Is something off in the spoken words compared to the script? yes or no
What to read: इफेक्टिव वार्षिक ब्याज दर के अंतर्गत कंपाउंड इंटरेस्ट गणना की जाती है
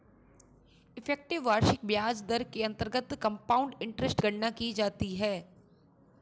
no